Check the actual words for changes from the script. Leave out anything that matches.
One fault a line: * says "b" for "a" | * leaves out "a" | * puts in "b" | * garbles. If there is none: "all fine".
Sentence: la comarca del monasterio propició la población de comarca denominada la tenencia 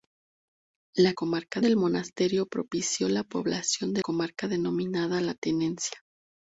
all fine